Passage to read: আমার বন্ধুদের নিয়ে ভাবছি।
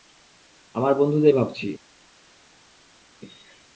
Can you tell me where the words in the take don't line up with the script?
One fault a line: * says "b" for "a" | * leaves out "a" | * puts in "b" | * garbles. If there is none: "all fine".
* leaves out "নিয়ে"